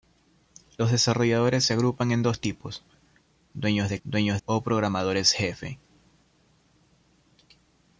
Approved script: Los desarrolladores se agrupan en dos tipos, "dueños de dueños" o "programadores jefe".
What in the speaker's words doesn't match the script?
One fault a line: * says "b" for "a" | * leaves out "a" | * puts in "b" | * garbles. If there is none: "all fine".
all fine